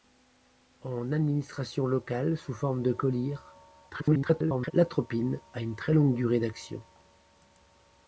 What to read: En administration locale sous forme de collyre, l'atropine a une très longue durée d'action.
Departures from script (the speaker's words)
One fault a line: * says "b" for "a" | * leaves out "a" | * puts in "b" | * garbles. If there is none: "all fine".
* garbles